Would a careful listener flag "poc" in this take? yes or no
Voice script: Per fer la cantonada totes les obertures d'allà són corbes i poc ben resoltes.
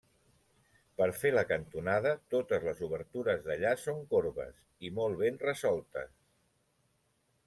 yes